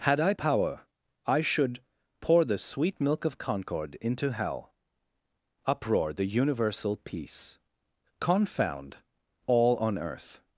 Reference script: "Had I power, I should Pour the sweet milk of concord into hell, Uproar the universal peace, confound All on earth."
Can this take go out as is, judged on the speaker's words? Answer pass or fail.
pass